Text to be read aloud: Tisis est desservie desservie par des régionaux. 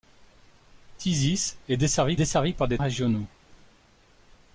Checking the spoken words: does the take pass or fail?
pass